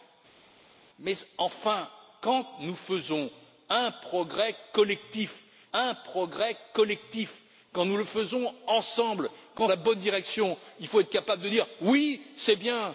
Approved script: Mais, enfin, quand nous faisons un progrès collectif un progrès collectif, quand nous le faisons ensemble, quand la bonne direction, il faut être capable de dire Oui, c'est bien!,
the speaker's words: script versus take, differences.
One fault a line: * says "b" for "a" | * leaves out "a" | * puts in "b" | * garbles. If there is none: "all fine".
all fine